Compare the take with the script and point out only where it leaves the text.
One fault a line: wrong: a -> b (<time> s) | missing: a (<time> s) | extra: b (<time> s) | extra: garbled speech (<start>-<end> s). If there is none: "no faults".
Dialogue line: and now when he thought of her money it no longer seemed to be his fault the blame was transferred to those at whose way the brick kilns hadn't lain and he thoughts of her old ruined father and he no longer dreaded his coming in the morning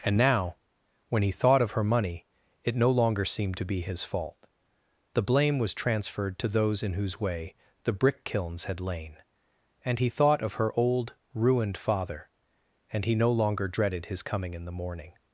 wrong: at -> in (6.8 s)
wrong: hadn't -> had (8.6 s)
wrong: thoughts -> thought (10.1 s)